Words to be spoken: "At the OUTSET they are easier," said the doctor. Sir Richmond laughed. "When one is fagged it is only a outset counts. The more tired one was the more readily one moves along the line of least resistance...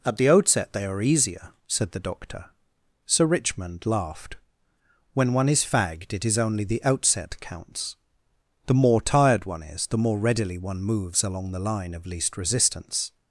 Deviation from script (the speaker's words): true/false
true